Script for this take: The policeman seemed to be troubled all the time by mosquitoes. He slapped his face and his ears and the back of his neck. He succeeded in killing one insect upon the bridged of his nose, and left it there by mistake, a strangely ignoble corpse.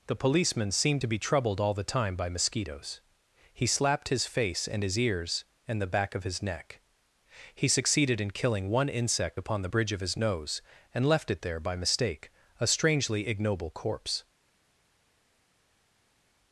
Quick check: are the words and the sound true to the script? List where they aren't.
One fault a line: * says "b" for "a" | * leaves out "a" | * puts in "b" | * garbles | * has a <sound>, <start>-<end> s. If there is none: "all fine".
* says "bridge" for "bridged"